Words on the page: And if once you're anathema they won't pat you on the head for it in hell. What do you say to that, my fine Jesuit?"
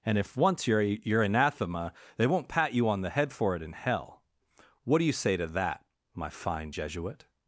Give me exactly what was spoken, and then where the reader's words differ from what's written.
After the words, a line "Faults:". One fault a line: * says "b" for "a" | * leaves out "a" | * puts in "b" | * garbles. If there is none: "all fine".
And if once you're you're anathema they won't pat you on the head for it in hell. What do you say to that, my fine Jesuit?"
Faults:
* puts in "you're"